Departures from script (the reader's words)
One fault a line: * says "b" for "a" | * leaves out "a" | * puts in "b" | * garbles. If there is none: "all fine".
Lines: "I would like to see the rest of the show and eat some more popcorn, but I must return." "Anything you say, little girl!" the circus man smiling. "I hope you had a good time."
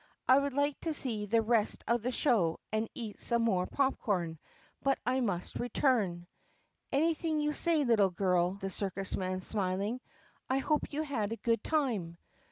all fine